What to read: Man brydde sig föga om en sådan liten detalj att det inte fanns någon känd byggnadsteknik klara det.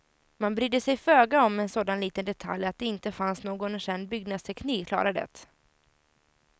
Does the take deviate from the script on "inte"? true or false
false